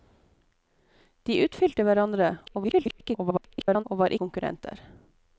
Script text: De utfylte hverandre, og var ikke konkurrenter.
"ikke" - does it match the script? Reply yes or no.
no